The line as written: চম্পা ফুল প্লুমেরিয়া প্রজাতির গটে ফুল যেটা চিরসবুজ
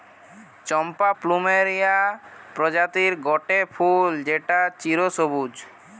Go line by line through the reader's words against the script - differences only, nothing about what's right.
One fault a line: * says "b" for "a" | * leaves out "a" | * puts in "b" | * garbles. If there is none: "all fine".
* leaves out "ফুল"